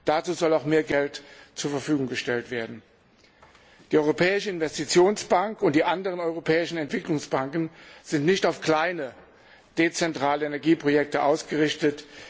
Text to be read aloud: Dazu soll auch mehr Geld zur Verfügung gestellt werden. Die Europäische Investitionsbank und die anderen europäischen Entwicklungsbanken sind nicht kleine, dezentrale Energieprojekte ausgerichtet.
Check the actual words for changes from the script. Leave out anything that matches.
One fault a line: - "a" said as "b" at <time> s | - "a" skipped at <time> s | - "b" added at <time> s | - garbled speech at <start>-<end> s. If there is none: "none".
- "auf" added at 8.4 s